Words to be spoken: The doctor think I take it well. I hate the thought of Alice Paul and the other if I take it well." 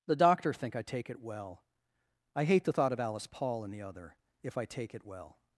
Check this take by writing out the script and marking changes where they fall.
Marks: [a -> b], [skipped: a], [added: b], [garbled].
The doctor think I take it well. I hate the thought of Alice Paul and the other if I take it well."